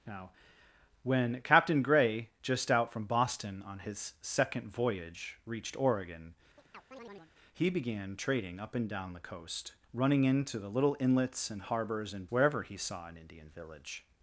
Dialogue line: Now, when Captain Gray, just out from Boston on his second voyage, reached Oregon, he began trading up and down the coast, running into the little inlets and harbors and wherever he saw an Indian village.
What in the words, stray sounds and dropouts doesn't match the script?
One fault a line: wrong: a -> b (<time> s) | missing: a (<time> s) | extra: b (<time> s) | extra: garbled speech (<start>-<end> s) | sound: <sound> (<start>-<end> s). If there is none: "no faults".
sound: chirp (6.6-7.3 s)